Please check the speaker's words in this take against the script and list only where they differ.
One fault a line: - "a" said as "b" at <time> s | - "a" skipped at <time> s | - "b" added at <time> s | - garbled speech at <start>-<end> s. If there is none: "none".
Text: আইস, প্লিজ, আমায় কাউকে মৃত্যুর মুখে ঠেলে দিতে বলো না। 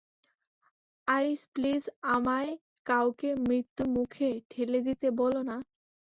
none